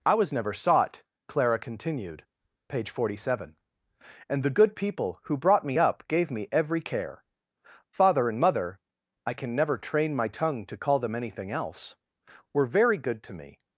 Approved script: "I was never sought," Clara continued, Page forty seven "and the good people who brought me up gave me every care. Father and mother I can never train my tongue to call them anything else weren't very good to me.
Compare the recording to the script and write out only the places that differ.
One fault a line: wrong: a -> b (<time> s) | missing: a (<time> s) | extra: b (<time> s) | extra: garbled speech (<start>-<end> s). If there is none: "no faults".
wrong: weren't -> were (12.5 s)